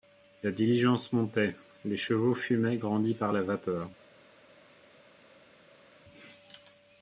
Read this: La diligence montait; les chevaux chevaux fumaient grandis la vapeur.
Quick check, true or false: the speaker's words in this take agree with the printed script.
false